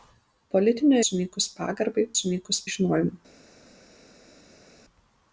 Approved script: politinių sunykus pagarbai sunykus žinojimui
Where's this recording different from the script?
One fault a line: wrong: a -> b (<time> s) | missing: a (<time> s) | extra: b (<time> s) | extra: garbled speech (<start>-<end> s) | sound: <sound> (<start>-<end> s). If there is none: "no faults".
no faults